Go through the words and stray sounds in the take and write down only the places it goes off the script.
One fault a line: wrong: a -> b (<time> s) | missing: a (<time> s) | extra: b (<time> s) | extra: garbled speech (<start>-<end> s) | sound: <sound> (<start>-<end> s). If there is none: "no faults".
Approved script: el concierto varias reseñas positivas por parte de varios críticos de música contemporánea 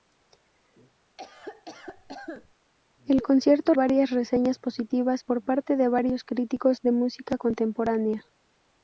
sound: cough (1.2-2.5 s)